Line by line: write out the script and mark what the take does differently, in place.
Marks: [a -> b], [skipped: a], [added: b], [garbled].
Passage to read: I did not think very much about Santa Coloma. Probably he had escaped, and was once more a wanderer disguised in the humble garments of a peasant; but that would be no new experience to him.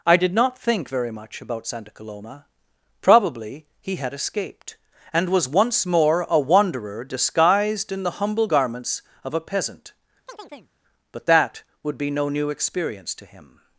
I did not think very much about Santa Coloma. Probably he had escaped, and was once more a wanderer disguised in the humble garments of a peasant; but that would be no new experience to him.